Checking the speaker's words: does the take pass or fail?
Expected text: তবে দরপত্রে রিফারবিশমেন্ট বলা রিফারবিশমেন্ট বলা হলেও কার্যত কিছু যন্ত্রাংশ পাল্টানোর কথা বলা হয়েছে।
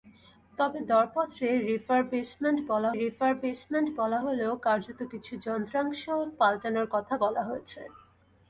pass